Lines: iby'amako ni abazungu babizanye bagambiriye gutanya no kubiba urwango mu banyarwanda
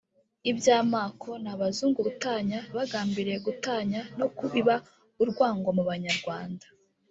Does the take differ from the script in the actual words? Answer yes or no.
yes